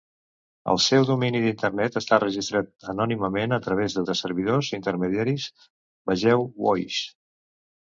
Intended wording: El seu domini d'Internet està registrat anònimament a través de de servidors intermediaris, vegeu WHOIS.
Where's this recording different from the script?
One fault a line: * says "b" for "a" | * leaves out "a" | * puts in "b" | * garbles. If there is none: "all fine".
all fine